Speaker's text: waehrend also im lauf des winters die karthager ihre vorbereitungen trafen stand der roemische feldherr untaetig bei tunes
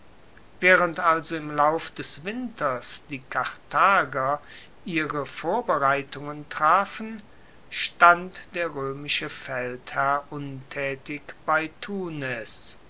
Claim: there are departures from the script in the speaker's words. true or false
false